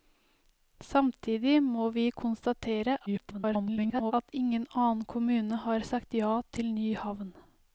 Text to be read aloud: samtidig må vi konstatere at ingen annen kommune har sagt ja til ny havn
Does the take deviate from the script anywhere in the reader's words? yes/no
yes